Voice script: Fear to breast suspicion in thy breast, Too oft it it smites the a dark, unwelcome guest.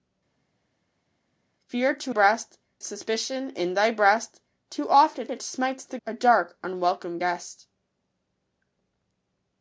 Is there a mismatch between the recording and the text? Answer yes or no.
no